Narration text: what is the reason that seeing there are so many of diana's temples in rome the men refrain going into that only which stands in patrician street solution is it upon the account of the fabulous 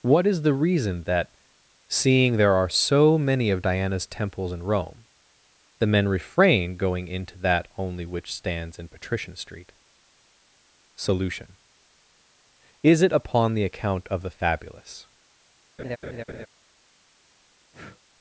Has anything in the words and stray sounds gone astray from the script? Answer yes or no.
yes